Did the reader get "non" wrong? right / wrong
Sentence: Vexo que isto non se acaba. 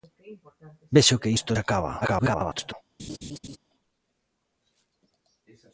wrong